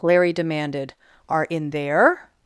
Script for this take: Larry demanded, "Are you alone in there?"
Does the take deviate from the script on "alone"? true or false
true